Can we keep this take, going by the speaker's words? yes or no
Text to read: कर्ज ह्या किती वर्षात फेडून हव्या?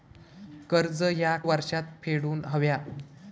no